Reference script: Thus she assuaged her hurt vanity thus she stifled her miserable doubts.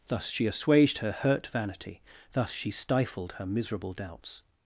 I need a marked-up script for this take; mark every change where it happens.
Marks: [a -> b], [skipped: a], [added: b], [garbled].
Thus she assuaged her hurt vanity thus she stifled her miserable doubts.